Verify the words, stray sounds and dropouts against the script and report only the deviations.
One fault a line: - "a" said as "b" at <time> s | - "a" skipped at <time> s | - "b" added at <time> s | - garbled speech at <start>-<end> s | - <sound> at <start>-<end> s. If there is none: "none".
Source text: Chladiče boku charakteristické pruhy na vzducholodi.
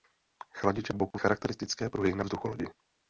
- dropout at 1.1-1.1 s